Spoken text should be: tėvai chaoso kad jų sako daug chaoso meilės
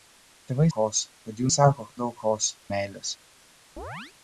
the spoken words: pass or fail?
pass